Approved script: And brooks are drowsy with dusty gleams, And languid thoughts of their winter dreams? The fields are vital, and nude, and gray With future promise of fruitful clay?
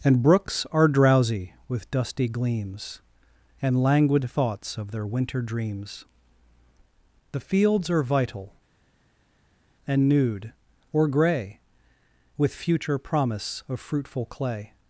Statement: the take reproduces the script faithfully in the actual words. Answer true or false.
false